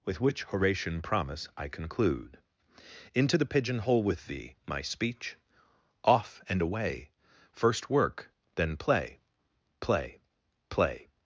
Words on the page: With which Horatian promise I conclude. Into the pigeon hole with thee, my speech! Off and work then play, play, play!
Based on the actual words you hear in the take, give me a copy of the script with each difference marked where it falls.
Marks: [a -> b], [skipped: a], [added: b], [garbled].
With which Horatian promise I conclude. Into the pigeon hole with thee, my speech! Off and [added: away first] work then play, play, play!